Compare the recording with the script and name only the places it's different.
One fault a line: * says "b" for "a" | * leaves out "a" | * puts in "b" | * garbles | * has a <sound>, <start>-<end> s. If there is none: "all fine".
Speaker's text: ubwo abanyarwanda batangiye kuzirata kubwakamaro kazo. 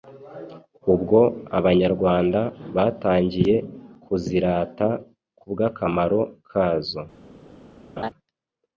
* has a laugh, 8.0-8.1 s